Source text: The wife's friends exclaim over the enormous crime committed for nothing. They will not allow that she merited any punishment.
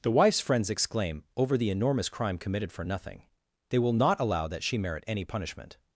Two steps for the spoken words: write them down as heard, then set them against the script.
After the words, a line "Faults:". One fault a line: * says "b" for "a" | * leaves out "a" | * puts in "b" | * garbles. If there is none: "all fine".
The wife's friends exclaim over the enormous crime committed for nothing. They will not allow that she merit any punishment.
Faults:
* says "merit" for "merited"